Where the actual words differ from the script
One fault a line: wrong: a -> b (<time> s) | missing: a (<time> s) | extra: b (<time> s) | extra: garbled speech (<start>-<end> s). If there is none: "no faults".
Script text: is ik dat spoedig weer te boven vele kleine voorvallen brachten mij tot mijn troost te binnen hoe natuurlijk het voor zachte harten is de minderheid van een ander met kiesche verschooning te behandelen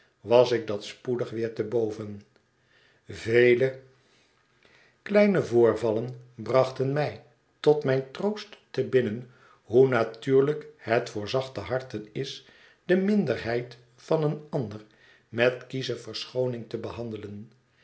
wrong: is -> was (0.2 s)